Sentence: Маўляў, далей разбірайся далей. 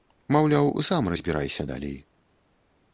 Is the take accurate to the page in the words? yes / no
no